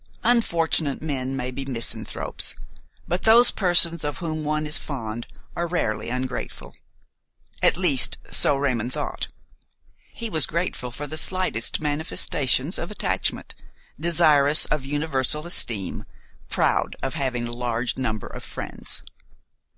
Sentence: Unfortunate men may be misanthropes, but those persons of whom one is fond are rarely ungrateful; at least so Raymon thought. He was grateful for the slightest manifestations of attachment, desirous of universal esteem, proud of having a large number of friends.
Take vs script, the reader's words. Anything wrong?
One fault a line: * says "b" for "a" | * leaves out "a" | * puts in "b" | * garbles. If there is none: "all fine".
all fine